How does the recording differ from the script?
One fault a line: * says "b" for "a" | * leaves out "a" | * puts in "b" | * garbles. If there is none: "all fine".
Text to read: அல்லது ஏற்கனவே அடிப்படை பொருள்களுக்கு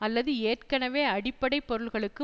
all fine